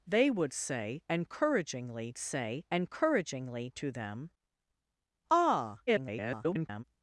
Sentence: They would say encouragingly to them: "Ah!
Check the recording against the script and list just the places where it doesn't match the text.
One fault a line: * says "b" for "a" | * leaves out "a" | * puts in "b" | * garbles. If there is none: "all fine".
* puts in "say encouragingly"
* garbles